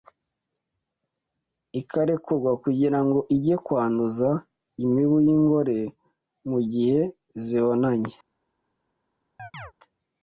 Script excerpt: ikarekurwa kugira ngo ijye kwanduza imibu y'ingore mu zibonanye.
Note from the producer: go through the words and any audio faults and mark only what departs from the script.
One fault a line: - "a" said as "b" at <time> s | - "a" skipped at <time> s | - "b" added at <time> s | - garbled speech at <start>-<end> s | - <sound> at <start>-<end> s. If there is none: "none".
- "gihe" added at 6.7 s
- chirp at 9.4-9.7 s